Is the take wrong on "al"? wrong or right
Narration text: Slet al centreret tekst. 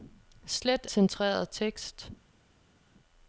wrong